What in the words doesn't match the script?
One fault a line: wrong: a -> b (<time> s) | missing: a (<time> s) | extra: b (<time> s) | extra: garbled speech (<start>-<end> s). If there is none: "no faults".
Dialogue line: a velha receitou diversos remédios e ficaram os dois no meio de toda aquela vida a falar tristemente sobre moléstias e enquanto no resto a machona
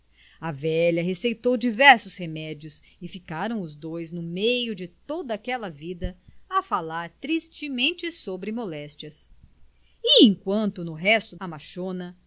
no faults